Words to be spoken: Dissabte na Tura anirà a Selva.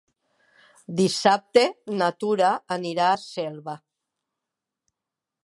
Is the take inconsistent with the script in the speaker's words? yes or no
no